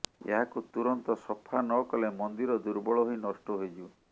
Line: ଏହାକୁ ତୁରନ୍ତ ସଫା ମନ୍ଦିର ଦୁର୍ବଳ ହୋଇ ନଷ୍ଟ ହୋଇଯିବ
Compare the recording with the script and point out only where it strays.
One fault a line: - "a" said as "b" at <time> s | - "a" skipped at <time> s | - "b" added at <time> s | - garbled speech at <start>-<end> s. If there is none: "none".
- "ନକଲେ" added at 1.7 s